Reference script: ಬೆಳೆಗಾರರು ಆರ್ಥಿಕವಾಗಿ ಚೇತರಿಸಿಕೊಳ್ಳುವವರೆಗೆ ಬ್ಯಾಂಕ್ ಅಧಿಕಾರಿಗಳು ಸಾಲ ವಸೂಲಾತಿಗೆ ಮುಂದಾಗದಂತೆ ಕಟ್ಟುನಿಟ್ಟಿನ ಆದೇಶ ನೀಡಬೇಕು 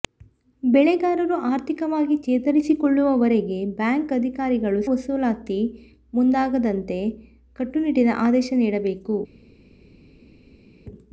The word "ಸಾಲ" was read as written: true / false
false